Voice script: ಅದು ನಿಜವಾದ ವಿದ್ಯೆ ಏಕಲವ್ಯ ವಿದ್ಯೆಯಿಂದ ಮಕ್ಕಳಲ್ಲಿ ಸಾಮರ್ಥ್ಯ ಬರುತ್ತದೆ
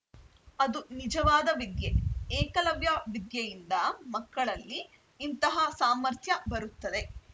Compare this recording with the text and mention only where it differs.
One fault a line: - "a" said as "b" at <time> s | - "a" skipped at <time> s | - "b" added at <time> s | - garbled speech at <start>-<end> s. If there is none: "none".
- "ಇಂತಹ" added at 5.2 s